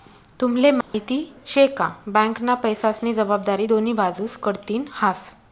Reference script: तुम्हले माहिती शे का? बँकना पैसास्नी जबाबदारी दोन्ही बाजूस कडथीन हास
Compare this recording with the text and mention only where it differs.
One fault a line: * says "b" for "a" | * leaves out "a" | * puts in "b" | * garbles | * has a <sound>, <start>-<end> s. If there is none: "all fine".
* has a dropout, 0.8-0.9 s